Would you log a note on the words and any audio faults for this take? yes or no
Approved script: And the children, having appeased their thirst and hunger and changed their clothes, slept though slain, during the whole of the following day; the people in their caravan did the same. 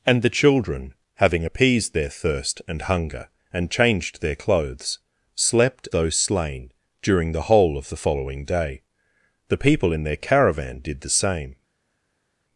no